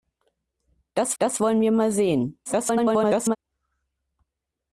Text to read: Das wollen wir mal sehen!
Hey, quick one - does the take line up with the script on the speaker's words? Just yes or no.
no